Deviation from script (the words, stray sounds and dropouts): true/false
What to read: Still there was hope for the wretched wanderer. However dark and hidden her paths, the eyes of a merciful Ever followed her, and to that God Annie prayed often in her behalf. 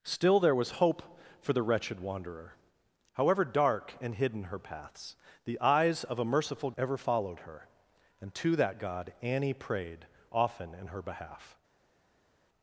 false